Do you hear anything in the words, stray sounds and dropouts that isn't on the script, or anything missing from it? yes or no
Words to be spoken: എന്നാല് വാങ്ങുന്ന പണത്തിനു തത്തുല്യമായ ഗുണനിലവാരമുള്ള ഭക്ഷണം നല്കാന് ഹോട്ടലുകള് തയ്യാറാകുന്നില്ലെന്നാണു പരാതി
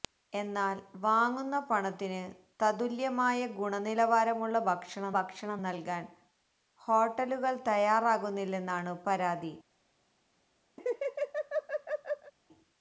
yes